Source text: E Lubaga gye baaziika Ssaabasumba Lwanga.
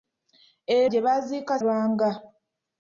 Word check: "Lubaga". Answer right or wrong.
wrong